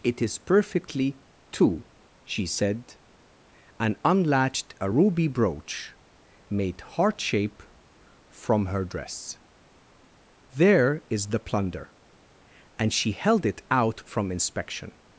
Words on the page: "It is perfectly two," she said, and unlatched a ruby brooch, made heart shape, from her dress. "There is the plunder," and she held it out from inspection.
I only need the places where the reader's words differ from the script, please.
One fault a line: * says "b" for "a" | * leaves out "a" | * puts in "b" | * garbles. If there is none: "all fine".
all fine